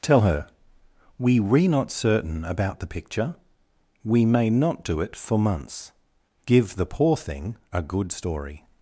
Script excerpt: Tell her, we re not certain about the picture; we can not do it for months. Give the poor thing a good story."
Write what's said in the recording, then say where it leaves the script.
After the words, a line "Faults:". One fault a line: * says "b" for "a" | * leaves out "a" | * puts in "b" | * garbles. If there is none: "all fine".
Tell her, we re not certain about the picture; we may not do it for months. Give the poor thing a good story."
Faults:
* says "may" for "can"